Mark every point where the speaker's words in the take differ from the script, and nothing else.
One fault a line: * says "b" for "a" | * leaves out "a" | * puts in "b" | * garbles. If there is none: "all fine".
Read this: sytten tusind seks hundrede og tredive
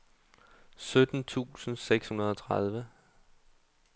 all fine